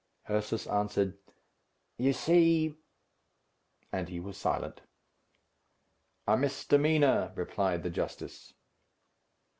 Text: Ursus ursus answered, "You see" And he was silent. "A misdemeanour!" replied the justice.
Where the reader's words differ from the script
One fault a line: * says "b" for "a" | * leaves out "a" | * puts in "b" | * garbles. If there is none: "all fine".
* leaves out "ursus"